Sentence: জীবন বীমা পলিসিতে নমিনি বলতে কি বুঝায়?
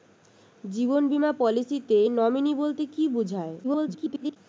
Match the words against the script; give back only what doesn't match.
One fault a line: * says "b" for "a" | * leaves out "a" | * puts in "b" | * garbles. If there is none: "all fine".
* garbles